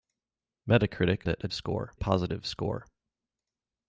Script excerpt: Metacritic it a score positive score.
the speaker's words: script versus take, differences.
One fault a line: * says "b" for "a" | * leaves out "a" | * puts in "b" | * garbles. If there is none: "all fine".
all fine